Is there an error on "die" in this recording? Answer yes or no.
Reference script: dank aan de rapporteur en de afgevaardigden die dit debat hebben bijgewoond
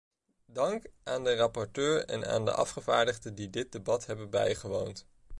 no